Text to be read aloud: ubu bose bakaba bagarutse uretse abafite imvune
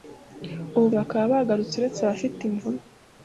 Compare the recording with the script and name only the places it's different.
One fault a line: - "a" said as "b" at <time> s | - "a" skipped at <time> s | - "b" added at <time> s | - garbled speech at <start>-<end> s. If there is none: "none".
- "bose" skipped at 0.9 s